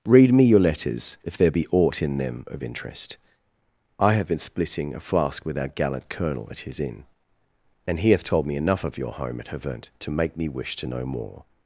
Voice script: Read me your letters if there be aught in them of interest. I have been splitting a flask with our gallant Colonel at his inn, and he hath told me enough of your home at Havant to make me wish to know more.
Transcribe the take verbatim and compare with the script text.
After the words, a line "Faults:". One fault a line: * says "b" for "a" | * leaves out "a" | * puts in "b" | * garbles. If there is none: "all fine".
Read me your letters if there be aught in them of interest. I have been splitting a flask with our gallant Colonel at his inn, and he hath told me enough of your home at Havant to make me wish to know more.
Faults:
all fine